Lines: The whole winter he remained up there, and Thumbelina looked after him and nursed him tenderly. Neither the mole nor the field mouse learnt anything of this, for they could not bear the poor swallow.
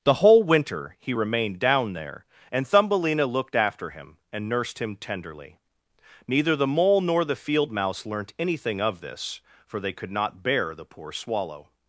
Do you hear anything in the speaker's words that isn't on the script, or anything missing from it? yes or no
yes